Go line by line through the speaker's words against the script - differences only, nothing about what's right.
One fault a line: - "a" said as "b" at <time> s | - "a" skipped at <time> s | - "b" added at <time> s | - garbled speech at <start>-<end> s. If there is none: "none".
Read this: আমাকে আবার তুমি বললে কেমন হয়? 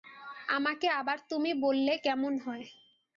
none